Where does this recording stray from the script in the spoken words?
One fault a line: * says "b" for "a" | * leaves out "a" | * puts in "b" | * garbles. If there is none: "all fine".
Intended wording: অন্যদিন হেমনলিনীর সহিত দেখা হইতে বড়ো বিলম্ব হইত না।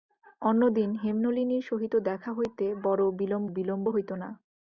* puts in "বিলম্ব"